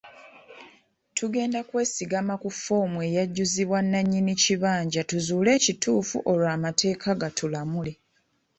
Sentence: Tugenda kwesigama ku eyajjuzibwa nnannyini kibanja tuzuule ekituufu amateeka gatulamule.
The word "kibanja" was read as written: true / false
true